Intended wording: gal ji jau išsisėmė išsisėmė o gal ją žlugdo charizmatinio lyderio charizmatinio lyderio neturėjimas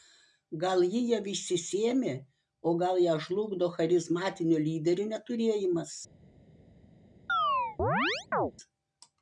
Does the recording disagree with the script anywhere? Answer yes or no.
yes